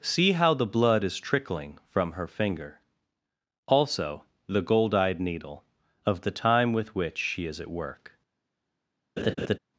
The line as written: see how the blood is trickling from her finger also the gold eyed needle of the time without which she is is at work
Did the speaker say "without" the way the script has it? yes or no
no